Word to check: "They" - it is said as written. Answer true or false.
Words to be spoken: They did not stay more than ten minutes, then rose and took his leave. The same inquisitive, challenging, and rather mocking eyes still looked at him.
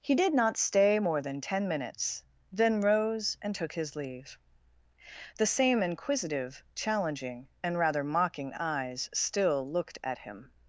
false